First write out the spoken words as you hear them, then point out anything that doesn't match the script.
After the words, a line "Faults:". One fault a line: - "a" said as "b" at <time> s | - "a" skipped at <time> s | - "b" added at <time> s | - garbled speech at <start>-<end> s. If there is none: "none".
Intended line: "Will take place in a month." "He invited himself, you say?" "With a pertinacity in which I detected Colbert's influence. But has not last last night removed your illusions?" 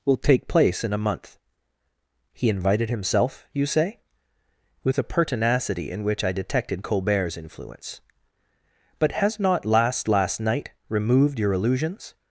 "Will take place in a month." "He invited himself, you say?" "With a pertinacity in which I detected Colbert's influence. But has not last last night removed your illusions?"
Faults:
none